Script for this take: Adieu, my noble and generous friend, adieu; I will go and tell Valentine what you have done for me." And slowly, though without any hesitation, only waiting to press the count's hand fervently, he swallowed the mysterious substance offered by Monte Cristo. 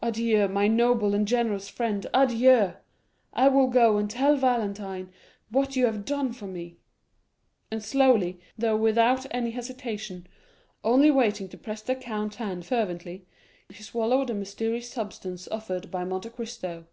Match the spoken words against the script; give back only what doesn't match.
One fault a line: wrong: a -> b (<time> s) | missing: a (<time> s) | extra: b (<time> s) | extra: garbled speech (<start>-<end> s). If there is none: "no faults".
no faults